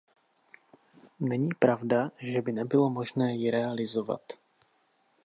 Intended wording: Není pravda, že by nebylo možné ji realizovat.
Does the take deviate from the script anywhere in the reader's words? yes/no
no